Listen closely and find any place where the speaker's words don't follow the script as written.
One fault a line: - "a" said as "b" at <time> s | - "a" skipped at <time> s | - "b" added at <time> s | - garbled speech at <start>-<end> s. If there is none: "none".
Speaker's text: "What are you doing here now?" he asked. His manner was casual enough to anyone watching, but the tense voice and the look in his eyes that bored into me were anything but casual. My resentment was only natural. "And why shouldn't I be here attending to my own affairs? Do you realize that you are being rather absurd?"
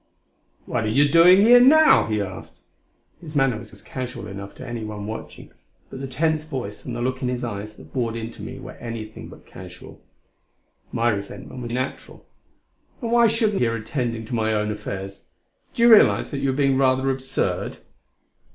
- "was" added at 3.7 s
- "only" skipped at 11.7 s
- "I be" skipped at 13.6 s